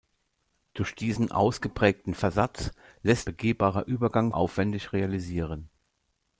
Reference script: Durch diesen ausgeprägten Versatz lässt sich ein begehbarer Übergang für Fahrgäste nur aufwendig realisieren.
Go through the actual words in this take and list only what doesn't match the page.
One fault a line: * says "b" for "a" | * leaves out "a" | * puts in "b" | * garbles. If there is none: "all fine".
* leaves out "sich ein"
* leaves out "für Fahrgäste nur"